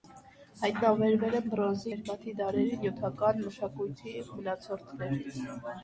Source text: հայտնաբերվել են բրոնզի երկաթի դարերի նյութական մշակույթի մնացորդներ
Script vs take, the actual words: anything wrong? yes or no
no